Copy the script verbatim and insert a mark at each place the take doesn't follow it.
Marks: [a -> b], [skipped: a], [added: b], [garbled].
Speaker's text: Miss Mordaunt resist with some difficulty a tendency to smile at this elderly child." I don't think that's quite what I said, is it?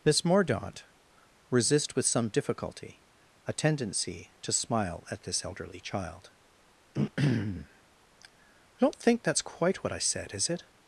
Miss Mordaunt resist with some difficulty a tendency to smile at this elderly child." I don't think that's quite what I said, is it?